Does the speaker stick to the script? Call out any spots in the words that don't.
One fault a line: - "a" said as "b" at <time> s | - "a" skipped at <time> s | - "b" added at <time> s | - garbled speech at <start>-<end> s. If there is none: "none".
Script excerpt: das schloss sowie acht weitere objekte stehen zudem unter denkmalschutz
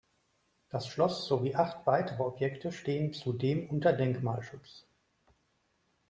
none